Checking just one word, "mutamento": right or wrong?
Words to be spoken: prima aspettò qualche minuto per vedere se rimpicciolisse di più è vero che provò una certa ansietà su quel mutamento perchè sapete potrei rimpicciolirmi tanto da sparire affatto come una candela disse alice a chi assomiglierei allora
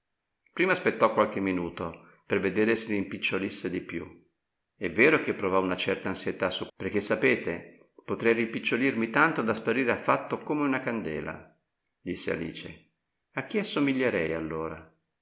wrong